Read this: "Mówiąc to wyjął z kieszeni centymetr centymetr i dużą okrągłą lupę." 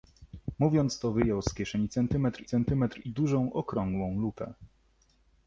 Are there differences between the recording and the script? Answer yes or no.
no